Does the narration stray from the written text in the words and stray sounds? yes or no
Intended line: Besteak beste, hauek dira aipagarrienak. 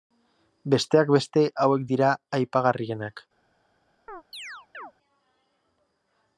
yes